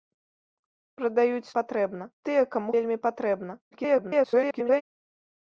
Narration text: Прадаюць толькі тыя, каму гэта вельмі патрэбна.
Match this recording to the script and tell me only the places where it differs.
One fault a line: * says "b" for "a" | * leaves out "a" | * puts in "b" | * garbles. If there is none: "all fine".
* says "патрэбна" for "толькі"
* leaves out "гэта"
* garbles